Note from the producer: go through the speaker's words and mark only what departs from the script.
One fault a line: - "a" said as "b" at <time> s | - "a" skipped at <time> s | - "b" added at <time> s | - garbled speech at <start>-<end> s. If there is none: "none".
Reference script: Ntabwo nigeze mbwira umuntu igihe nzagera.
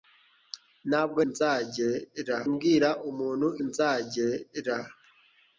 - "nigeze" said as "nzagera" at 1.3 s
- "igihe" skipped at 3.5 s